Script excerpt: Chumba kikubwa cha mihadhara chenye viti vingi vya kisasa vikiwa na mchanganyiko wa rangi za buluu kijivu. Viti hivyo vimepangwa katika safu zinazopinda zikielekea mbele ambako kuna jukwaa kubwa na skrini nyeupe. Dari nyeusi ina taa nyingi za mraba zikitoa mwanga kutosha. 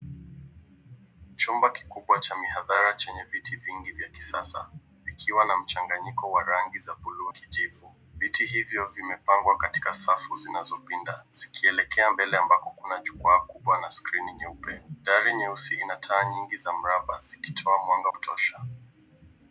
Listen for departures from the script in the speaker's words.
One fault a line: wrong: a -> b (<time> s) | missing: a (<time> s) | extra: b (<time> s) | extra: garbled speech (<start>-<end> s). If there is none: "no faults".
no faults